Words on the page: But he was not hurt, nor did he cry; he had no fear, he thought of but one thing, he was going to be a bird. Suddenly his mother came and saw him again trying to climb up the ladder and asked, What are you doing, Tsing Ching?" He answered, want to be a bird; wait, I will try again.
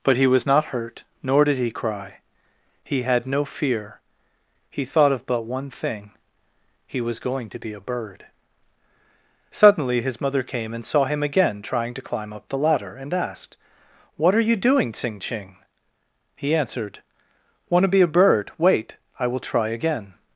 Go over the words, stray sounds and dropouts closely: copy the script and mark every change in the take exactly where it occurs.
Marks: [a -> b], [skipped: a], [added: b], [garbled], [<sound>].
But he was not hurt, nor did he cry; he had no fear, he thought of but one thing, he was going to be a bird. Suddenly his mother came and saw him again trying to climb up the ladder and asked, What are you doing, Tsing Ching?" He answered, want to be a bird; wait, I will try again.